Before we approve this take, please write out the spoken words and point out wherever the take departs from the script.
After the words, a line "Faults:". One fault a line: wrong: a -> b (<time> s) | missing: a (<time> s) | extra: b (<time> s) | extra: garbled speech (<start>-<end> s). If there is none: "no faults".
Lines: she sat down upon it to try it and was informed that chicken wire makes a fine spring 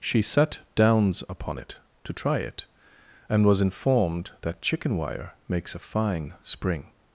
she sat downs upon it to try it and was informed that chicken wire makes a fine spring
Faults:
wrong: down -> downs (0.7 s)